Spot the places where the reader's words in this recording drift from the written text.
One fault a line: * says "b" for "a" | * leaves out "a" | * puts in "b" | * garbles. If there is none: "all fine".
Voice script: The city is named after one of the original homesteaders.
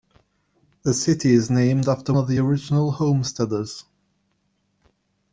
* leaves out "one"